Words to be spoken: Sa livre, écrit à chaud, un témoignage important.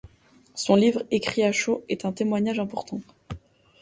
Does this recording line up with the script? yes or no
no